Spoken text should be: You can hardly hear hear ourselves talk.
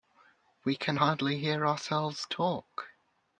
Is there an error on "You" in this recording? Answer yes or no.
yes